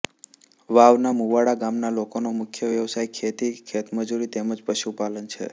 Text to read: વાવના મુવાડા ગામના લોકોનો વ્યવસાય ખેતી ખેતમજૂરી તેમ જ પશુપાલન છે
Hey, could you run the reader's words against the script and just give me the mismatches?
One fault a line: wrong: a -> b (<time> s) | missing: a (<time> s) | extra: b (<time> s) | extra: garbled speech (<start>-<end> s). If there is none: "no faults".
extra: મુખ્ય (2.4 s)